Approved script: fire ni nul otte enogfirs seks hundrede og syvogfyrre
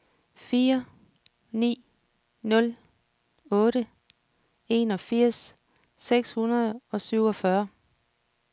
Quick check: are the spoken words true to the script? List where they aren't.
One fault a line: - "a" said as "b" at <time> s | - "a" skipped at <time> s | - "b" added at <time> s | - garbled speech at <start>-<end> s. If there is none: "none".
none